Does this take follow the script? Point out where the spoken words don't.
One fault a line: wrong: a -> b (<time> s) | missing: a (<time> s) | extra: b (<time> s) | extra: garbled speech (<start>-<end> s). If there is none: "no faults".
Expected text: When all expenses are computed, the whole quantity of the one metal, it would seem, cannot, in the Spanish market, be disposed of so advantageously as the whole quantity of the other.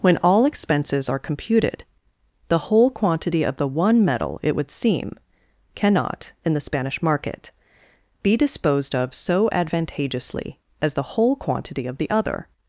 no faults